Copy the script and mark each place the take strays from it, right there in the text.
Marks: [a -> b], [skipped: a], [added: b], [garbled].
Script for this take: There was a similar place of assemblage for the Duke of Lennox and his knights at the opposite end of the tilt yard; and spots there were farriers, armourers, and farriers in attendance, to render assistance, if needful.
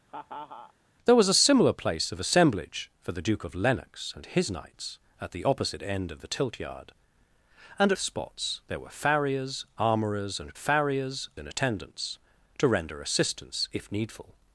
There was a similar place of assemblage for the Duke of Lennox and his knights at the opposite end of the tilt yard; and spots there were farriers, armourers, and farriers in attendance, to render assistance, if needful.